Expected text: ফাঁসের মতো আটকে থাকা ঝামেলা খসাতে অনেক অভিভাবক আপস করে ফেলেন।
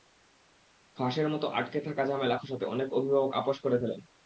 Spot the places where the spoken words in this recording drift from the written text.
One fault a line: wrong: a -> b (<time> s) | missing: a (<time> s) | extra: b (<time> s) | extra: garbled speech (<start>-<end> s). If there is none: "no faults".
no faults